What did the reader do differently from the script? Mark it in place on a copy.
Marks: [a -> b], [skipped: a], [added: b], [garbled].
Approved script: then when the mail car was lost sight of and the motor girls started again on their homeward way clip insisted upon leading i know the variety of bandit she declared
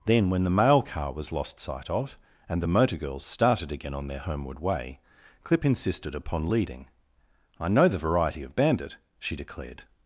then when the mail car was lost sight of and the motor girls started again on their homeward way clip insisted upon leading i know the variety of bandit she declared